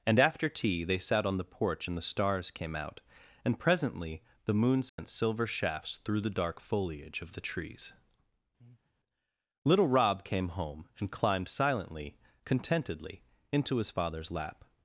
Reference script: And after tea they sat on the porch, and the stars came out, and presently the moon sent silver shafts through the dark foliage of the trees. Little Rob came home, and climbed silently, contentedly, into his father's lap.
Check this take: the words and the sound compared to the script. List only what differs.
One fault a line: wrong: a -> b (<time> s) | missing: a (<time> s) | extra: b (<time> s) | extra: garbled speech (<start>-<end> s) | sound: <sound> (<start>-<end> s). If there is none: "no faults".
sound: dropout (4.9-5.0 s)
sound: breath (8.6-8.9 s)